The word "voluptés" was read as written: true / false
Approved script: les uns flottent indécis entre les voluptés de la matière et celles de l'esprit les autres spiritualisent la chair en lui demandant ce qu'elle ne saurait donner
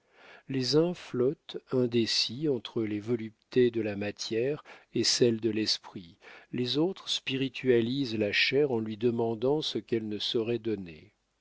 true